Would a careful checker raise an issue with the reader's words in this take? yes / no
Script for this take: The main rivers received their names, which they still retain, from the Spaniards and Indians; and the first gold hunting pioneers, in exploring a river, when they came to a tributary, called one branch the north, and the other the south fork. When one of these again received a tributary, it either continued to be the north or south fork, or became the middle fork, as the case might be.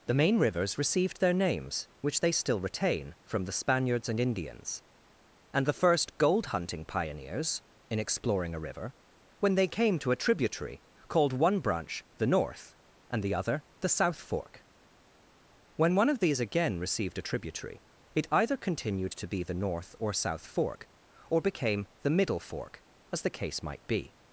no